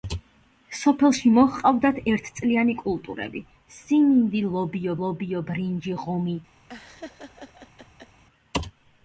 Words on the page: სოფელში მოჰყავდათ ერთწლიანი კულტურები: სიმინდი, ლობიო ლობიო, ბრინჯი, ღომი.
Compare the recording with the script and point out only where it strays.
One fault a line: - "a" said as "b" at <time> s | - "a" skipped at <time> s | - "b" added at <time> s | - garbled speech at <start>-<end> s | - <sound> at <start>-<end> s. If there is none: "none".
- laugh at 6.7-8.2 s